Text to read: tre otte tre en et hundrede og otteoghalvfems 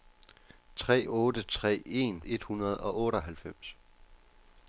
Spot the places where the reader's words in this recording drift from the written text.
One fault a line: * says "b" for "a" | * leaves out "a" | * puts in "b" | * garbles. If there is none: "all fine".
all fine